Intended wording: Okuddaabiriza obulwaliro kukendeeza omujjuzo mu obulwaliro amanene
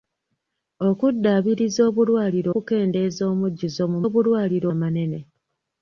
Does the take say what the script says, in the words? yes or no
yes